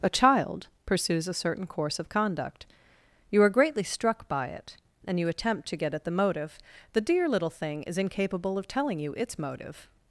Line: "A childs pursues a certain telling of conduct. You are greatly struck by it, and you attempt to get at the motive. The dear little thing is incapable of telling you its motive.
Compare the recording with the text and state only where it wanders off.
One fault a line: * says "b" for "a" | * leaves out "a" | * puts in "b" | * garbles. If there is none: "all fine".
* says "child" for "childs"
* says "course" for "telling"